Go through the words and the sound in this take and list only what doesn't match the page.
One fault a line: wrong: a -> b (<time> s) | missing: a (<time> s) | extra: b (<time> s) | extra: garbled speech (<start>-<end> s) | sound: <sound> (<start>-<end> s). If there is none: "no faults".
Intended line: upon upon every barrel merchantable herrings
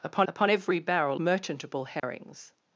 sound: dropout (2.0-2.0 s)